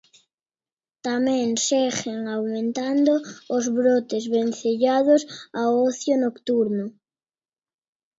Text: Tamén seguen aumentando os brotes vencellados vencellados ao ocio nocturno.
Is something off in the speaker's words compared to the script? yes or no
yes